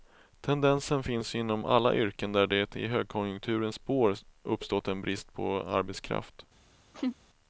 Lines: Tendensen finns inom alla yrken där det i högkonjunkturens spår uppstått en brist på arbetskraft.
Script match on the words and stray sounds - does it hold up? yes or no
no